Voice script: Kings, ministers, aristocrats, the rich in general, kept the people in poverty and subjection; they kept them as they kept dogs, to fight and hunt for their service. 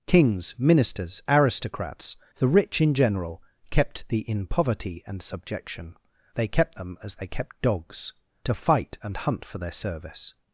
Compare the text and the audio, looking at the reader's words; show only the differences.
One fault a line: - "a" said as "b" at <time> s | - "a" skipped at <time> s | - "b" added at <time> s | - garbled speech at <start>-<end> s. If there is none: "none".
- "people" skipped at 4.3 s